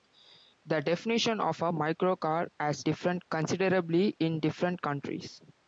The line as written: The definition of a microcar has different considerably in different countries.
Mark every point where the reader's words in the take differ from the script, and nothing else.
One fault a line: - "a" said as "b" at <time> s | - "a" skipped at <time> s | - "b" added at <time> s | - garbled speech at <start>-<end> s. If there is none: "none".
none